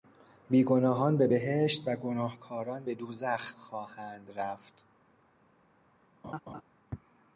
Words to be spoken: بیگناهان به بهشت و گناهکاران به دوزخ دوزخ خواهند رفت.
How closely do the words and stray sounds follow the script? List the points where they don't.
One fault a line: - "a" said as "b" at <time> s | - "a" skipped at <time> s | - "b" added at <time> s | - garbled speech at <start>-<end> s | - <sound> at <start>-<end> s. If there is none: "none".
- "دوزخ" skipped at 3.5 s
- laugh at 6.2-6.6 s